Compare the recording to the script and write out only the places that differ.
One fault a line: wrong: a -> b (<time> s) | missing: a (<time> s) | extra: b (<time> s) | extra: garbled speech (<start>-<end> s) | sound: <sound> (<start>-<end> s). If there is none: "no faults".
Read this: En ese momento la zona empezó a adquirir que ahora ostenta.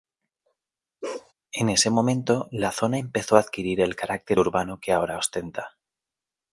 sound: bark (1.0-1.3 s)
extra: el carácter urbano (3.8 s)